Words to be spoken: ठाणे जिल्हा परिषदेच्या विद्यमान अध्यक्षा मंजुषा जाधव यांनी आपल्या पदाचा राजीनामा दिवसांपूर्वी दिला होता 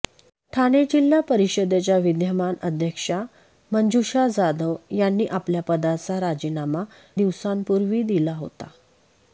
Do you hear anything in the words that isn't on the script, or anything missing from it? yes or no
no